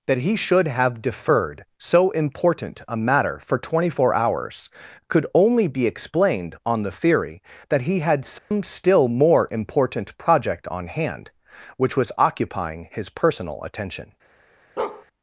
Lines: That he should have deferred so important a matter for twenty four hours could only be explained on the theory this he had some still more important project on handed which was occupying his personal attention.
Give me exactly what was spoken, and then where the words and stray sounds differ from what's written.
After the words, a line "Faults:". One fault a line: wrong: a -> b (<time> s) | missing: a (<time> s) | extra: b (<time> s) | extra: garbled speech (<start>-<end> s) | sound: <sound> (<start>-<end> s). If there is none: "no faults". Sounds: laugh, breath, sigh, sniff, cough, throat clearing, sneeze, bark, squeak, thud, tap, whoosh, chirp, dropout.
That he should have deferred so important a matter for twenty four hours could only be explained on the theory that he had some still more important project on hand which was occupying his personal attention.
Faults:
wrong: this -> that (7.7 s)
sound: dropout (8.4-8.5 s)
wrong: handed -> hand (10.9 s)
sound: bark (14.8-15.1 s)